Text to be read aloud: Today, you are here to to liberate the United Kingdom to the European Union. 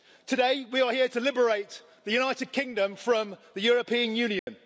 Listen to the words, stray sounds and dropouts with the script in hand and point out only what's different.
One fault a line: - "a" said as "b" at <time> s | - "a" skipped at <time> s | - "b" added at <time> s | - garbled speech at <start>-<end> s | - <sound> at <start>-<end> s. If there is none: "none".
- "you" said as "we" at 0.7 s
- "to" skipped at 1.2 s
- "to" said as "from" at 2.9 s
- dropout at 4.4-4.5 s